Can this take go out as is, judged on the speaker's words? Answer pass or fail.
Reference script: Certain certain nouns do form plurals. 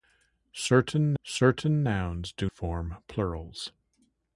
pass